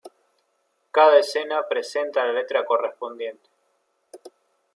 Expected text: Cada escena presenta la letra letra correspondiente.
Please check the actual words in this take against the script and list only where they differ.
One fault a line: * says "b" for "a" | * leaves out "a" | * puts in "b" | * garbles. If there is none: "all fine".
* leaves out "letra"